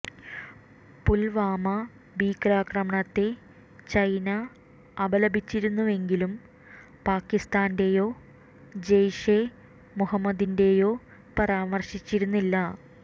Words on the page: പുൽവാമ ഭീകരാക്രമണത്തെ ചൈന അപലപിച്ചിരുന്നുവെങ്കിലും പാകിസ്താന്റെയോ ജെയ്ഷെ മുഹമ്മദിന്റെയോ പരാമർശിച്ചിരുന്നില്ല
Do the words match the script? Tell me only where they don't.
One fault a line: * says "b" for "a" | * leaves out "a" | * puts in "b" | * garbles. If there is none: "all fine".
all fine